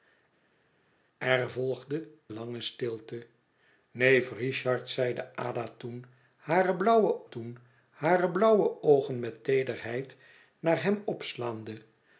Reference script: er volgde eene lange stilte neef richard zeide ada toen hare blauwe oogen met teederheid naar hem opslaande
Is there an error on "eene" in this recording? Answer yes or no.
yes